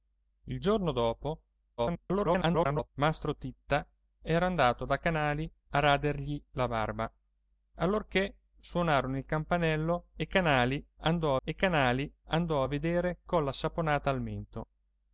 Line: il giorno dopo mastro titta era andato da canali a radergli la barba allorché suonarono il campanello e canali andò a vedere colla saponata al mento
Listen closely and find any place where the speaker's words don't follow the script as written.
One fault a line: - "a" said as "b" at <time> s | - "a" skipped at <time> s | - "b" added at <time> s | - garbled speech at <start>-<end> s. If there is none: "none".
- garbled speech at 1.8-2.9 s
- "e canali andò" added at 11.4 s